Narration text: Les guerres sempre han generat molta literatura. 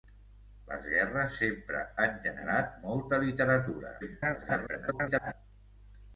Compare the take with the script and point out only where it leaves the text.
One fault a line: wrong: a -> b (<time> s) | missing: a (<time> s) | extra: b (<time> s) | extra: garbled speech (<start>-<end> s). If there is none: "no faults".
extra: garbled speech (4.0-5.3 s)